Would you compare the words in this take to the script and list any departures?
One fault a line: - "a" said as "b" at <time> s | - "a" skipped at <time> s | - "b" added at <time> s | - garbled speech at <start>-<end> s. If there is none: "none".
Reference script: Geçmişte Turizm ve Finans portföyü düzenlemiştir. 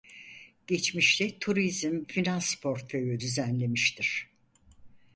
- "ve" skipped at 2.0 s